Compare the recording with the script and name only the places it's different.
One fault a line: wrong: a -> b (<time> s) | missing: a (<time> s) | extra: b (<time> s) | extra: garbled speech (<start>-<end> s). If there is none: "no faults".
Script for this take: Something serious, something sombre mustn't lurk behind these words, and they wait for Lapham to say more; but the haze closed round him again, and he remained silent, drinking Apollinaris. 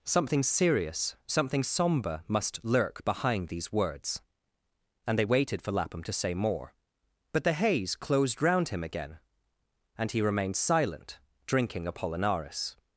wrong: mustn't -> must (2.3 s)
wrong: wait -> waited (5.2 s)